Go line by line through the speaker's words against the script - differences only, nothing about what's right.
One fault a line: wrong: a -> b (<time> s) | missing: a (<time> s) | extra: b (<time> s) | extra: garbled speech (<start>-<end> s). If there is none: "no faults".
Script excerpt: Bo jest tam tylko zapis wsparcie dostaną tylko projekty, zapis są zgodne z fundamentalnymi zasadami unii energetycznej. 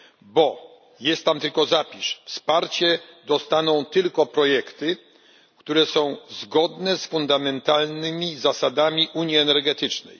wrong: zapis -> które (5.6 s)